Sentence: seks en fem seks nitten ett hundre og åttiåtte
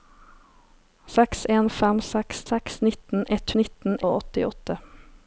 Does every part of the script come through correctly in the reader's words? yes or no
no